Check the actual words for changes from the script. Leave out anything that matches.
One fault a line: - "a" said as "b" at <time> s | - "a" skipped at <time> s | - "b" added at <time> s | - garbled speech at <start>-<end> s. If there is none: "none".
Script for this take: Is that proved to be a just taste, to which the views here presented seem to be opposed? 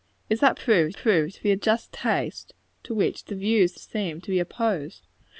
- "proved" added at 0.9 s
- "here presented" skipped at 3.7 s